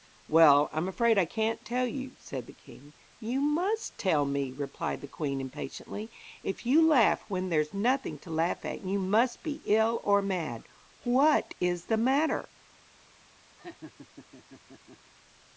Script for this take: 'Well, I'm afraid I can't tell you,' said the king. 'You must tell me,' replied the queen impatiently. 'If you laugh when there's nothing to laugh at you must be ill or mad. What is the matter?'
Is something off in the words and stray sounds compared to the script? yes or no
yes